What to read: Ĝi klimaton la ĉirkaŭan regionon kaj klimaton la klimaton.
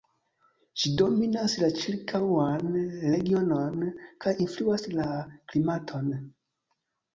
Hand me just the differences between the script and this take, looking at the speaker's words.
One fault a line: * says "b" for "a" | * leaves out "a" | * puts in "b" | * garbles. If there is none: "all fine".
* says "dominas" for "klimaton"
* says "influas" for "klimaton"